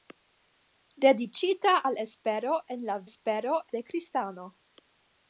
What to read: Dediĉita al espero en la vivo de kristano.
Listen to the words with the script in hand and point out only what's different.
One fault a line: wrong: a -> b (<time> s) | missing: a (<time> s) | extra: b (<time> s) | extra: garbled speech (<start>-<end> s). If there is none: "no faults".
wrong: vivo -> espero (3.1 s)